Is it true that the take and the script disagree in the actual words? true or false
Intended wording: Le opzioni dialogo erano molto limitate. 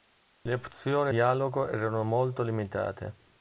false